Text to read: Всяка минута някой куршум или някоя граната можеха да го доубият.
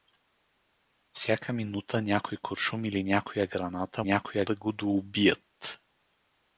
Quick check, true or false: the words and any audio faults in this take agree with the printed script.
false